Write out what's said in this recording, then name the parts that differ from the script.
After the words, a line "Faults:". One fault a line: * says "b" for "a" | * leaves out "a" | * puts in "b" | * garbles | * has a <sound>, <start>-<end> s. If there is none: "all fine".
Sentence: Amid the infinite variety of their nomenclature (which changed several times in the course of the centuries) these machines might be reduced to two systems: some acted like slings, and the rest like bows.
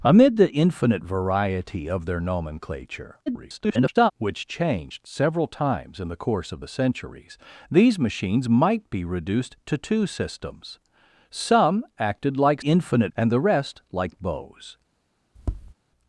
Amid the infinite variety of their nomenclature [garbled] (which changed several times in the course of the centuries) these machines might be reduced to two systems: some acted like infinite, and the rest like bows.
Faults:
* garbles
* says "infinite" for "slings"
* has a tap, 15.4-15.7 s